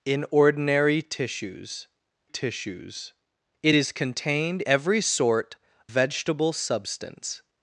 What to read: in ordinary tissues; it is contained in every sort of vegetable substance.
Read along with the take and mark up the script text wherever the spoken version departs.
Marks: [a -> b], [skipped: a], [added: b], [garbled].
in ordinary tissues; [added: tissues] it is contained [skipped: in] every sort [skipped: of] vegetable substance.